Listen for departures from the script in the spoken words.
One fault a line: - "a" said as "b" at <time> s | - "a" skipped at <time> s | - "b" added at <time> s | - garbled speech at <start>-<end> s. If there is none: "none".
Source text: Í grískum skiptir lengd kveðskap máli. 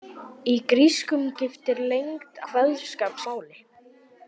none